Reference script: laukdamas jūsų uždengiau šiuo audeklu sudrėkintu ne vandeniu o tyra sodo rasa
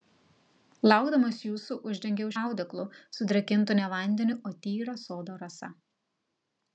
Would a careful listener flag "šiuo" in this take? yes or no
yes